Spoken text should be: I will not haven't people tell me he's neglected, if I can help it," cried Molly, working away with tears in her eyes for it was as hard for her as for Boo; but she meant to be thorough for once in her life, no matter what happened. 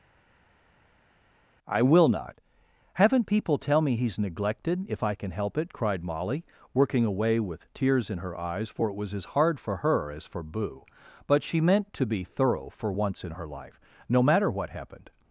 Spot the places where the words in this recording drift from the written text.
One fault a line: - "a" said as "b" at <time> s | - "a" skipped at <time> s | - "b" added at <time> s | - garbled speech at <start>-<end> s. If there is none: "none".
none